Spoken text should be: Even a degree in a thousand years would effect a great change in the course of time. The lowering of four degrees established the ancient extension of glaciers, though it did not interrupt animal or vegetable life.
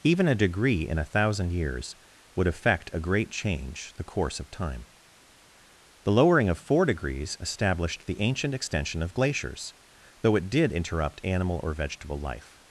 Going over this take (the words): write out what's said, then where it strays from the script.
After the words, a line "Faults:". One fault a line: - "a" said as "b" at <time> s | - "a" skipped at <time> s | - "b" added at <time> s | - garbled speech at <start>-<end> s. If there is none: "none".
Even a degree in a thousand years would effect a great change the course of time. The lowering of four degrees established the ancient extension of glaciers, though it did interrupt animal or vegetable life.
Faults:
- "in" skipped at 3.9 s
- "not" skipped at 10.7 s